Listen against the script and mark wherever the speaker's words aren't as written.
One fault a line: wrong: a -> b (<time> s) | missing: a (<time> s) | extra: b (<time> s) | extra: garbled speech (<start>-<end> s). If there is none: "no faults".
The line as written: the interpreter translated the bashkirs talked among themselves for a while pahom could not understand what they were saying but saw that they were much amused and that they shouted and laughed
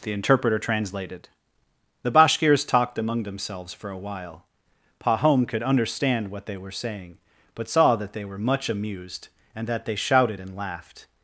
missing: not (5.6 s)